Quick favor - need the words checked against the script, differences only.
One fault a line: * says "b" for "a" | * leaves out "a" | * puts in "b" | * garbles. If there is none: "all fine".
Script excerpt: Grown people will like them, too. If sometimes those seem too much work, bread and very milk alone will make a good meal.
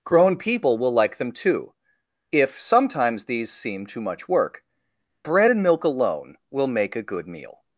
* says "these" for "those"
* leaves out "very"